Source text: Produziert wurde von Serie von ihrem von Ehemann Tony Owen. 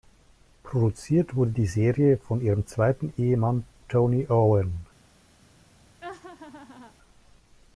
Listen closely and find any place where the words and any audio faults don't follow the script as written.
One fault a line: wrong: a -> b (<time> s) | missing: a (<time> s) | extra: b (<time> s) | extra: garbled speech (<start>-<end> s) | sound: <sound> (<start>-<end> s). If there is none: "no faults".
wrong: von -> die (1.5 s)
wrong: von -> zweiten (2.6 s)
sound: laugh (6.0-6.9 s)